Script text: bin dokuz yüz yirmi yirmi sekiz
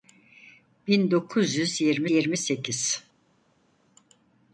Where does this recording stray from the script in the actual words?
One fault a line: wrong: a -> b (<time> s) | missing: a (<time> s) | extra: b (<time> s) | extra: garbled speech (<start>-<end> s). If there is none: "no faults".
no faults